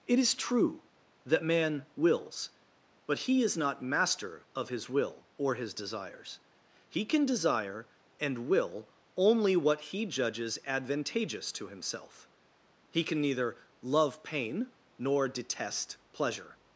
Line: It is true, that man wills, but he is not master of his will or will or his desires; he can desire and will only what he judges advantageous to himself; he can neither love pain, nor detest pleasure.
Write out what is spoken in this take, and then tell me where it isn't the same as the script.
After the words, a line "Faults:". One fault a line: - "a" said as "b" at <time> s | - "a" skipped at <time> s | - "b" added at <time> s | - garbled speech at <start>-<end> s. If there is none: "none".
It is true, that man wills, but he is not master of his will or his desires; he can desire and will only what he judges advantageous to himself; he can neither love pain, nor detest pleasure.
Faults:
- "will or" skipped at 5.5 s